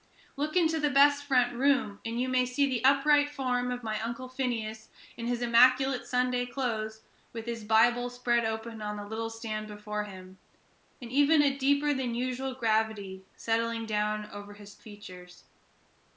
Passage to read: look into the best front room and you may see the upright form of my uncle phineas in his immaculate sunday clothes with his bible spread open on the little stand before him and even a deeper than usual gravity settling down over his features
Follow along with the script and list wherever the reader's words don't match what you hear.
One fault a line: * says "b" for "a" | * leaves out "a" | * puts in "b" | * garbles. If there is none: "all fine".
all fine